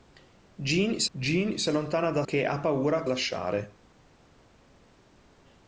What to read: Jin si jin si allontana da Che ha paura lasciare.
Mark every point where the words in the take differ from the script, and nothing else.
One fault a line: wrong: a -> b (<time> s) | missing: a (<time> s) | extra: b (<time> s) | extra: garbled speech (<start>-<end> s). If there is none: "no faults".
no faults